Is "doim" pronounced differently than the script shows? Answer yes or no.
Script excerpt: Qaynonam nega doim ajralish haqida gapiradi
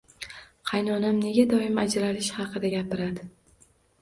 no